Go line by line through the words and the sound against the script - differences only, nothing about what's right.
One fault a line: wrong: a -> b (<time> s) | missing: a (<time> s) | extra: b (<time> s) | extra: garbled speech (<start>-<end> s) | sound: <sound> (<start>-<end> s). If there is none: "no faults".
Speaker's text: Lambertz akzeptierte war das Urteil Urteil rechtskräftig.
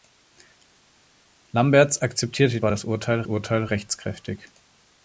no faults